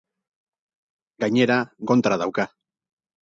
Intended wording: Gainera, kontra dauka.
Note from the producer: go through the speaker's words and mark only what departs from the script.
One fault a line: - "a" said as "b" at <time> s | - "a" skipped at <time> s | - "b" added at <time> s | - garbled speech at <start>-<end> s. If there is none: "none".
none